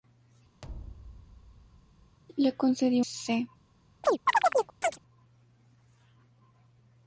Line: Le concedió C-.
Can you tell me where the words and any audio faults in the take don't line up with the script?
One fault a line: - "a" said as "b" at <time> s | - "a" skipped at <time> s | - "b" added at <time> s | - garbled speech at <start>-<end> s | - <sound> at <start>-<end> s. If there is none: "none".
- thud at 0.6-2.2 s
- chirp at 4.0-5.0 s